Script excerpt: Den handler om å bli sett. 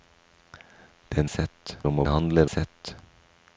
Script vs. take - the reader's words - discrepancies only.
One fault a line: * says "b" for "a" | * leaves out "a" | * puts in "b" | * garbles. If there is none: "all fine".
* says "sett" for "handler"
* says "handler" for "bli"